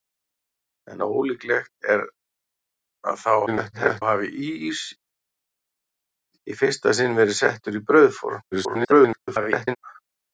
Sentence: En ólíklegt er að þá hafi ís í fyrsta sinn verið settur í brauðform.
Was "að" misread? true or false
false